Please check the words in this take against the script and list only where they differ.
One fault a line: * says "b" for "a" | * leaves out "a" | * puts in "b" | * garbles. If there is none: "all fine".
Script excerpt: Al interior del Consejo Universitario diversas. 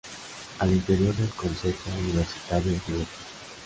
all fine